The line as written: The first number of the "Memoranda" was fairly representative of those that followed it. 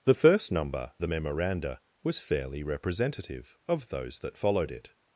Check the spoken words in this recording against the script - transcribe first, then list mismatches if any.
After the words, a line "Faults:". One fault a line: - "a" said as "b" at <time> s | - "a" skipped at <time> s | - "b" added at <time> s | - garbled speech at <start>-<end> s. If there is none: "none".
The first number the "Memoranda" was fairly representative of those that followed it.
Faults:
- "of" skipped at 0.9 s